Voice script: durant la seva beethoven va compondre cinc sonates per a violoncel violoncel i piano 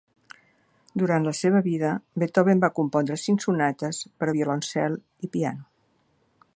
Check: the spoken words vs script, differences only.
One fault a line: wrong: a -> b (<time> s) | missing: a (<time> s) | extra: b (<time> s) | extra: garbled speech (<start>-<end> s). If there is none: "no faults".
extra: vida (1.7 s)
missing: violoncel (5.0 s)